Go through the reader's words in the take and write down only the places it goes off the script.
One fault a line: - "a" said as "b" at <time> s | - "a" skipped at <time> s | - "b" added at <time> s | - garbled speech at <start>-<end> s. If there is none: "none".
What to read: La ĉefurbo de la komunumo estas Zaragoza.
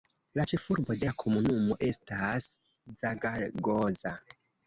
none